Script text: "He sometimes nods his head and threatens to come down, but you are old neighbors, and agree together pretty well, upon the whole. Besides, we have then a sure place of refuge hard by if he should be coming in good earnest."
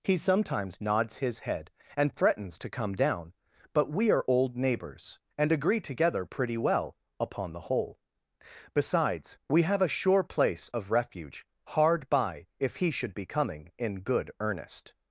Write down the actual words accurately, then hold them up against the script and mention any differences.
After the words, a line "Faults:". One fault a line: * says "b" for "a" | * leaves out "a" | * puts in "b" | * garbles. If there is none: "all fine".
"He sometimes nods his head and threatens to come down, but we are old neighbors, and agree together pretty well, upon the whole. Besides, we have a sure place of refuge hard by if he should be coming in good earnest."
Faults:
* says "we" for "you"
* leaves out "then"